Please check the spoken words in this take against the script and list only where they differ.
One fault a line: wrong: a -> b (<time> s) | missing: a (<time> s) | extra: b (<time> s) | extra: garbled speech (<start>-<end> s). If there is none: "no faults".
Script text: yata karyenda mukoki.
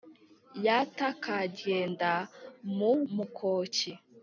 extra: mu (2.8 s)